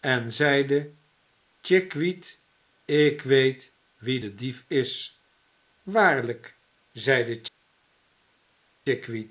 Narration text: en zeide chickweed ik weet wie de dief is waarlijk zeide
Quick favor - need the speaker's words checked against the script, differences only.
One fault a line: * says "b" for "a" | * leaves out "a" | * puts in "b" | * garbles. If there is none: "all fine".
all fine